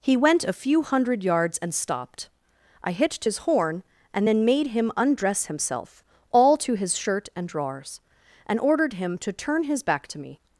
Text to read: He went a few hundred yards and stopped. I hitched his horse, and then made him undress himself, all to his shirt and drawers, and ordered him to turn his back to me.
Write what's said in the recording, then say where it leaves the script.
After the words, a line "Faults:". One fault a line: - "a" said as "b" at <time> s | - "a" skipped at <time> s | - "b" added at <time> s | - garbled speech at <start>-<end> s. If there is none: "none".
He went a few hundred yards and stopped. I hitched his horn, and then made him undress himself, all to his shirt and drawers, and ordered him to turn his back to me.
Faults:
- "horse" said as "horn" at 3.4 s